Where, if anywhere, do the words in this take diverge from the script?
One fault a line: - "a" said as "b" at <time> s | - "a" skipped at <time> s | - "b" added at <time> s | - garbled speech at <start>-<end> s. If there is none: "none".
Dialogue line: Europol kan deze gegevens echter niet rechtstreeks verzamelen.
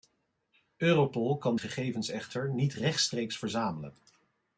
- "deze" skipped at 1.6 s